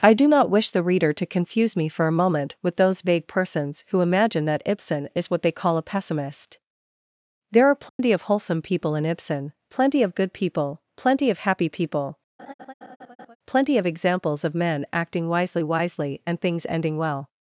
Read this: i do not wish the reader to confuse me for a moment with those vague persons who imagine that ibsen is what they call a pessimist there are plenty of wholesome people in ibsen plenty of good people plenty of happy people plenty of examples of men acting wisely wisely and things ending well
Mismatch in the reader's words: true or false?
false